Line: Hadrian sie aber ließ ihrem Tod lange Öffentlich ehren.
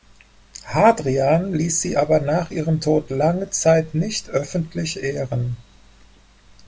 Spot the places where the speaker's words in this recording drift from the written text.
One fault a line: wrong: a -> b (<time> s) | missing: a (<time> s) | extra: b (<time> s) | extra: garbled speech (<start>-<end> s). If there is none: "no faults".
extra: ließ (1.5 s)
wrong: ließ -> nach (2.2 s)
extra: Zeit nicht (3.5 s)